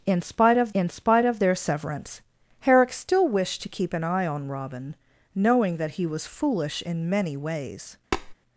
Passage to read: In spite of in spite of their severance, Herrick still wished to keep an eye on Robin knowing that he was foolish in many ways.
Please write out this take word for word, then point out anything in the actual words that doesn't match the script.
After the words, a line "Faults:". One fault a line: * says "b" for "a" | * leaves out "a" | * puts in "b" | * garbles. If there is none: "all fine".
In spite of in spite of their severance, Herrick still wished to keep an eye on Robin knowing that he was foolish in many ways.
Faults:
all fine